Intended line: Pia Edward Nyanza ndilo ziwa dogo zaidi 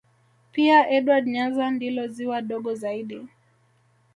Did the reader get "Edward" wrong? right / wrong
right